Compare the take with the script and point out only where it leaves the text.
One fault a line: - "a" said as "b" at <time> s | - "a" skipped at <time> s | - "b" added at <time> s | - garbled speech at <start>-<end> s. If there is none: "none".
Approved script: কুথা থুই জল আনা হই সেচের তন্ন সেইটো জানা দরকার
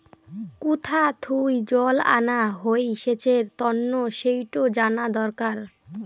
none